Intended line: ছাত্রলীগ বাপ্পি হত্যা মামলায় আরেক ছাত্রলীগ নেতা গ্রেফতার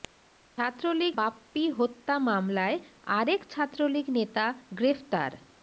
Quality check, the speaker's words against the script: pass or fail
pass